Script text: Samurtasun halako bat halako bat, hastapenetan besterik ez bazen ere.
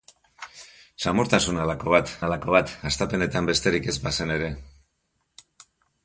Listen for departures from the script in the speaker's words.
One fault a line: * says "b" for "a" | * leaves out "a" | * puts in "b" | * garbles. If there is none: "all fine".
all fine